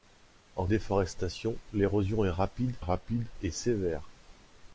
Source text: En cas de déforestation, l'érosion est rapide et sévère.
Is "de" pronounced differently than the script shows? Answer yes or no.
yes